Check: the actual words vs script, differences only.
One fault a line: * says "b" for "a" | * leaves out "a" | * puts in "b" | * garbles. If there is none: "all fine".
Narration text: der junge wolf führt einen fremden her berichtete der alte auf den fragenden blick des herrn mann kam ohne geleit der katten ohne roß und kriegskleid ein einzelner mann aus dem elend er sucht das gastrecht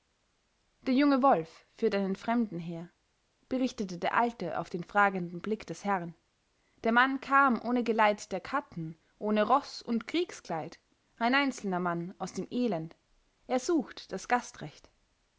* puts in "der"